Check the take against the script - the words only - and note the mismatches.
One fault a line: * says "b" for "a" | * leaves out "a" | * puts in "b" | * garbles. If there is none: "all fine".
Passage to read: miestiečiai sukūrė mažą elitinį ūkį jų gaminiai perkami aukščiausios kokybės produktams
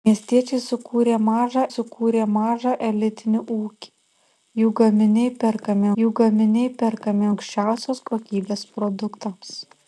* puts in "sukūrė mažą"
* puts in "jų gaminiai perkami"